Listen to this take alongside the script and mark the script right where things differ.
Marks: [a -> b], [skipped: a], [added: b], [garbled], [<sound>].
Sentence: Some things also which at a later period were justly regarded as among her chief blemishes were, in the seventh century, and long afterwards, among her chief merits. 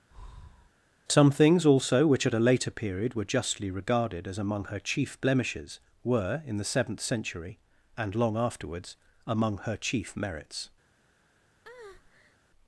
[breath] Some things also which at a later period were justly regarded as among her chief blemishes were, in the seventh century, and long afterwards, among her chief merits. [breath]